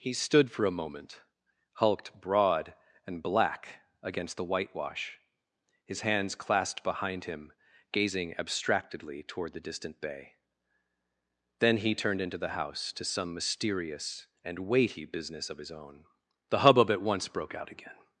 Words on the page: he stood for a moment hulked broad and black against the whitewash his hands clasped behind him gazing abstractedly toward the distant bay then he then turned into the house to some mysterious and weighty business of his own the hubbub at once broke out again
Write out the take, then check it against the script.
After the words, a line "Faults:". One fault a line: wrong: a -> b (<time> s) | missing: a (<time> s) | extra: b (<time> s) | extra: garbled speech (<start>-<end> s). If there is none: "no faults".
he stood for a moment hulked broad and black against the whitewash his hands clasped behind him gazing abstractedly toward the distant bay then he turned into the house to some mysterious and weighty business of his own the hubbub at once broke out again
Faults:
missing: then (11.9 s)